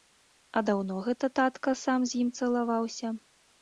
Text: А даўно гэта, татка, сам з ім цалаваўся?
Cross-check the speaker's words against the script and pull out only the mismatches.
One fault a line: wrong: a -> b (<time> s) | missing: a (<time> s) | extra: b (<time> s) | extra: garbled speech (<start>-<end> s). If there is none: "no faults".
no faults